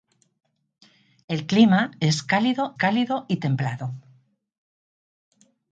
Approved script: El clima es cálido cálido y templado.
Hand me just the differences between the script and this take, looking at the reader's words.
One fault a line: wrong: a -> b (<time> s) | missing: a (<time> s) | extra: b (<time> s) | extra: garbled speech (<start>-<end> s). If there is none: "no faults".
no faults